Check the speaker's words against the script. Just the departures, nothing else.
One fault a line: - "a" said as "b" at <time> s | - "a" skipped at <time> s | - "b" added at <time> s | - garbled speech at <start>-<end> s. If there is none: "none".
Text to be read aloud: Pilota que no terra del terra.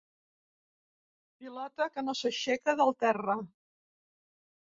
- "terra" said as "s'aixeca" at 2.2 s